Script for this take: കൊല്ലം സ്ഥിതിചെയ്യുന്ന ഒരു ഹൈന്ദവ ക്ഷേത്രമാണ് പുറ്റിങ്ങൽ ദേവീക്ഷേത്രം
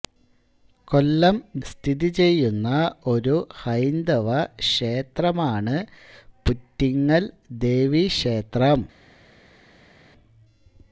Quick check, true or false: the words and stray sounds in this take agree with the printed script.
true